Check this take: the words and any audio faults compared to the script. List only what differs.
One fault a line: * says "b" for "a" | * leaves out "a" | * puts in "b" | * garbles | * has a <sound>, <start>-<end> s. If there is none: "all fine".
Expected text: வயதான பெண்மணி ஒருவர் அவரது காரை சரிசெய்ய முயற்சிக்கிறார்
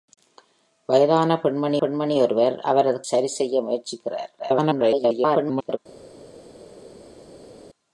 * puts in "பெண்மணி"
* leaves out "காரை"
* garbles